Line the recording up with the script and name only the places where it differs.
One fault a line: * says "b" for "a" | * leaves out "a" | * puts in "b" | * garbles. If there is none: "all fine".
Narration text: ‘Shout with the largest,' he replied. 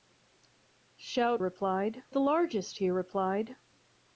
* says "replied" for "with"